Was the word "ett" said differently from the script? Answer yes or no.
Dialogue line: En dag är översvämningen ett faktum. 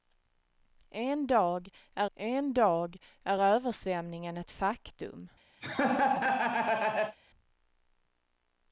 no